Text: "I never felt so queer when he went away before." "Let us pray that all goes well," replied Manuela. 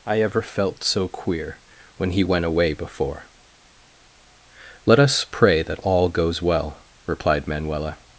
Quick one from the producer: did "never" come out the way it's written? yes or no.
no